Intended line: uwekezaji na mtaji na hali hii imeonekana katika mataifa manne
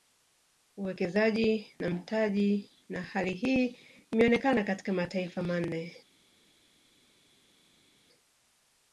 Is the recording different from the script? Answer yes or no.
no